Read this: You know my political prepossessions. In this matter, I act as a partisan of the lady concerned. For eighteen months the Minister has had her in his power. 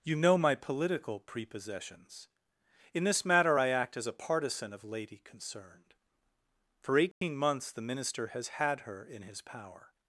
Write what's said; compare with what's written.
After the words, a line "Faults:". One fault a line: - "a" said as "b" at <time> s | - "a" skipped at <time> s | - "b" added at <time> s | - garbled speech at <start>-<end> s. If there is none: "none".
You know my political prepossessions. In this matter, I act as a partisan of lady concerned. For eighteen months the Minister has had her in his power.
Faults:
- "the" skipped at 4.8 s